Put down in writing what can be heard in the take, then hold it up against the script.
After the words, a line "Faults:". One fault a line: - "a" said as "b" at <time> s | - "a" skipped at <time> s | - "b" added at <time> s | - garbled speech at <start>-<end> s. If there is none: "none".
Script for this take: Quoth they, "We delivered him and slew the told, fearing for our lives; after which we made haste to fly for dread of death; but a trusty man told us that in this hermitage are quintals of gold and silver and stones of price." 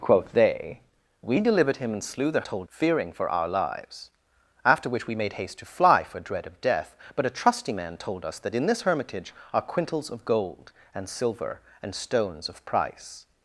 Quoth they, "We delivered him and slew the told, fearing for our lives; after which we made haste to fly for dread of death; but a trusty man told us that in this hermitage are quintals of gold and silver and stones of price."
Faults:
none